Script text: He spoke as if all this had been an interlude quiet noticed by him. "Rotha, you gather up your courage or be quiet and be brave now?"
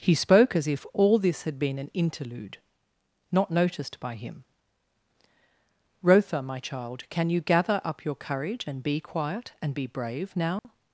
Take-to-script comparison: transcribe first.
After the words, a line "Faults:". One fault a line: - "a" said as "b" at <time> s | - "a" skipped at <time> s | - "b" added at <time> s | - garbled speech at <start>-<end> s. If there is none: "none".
He spoke as if all this had been an interlude not noticed by him. "Rotha, my child, can you gather up your courage and be quiet and be brave now?"
Faults:
- "quiet" said as "not" at 3.3 s
- "my child can" added at 6.4 s
- "or" said as "and" at 8.7 s